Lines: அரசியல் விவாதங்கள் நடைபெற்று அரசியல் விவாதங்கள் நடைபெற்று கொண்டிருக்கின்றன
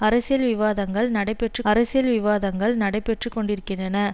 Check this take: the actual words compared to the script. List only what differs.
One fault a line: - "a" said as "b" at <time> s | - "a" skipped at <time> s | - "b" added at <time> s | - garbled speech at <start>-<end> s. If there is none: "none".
none